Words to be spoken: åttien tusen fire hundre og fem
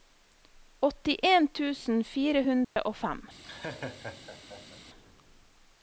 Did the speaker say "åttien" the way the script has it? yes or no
yes